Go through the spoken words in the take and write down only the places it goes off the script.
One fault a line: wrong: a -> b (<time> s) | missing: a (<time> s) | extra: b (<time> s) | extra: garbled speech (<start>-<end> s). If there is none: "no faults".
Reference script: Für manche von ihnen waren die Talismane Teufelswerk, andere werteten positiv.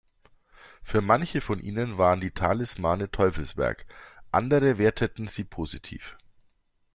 extra: sie (5.3 s)